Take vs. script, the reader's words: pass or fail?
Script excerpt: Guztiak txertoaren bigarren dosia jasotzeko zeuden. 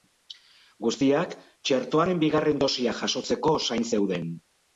fail